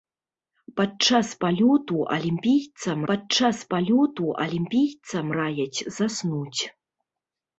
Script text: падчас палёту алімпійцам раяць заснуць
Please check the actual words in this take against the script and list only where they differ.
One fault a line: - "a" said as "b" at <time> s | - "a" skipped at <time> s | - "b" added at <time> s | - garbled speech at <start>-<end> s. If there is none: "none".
- "падчас палёту алімпійцам" added at 3.1 s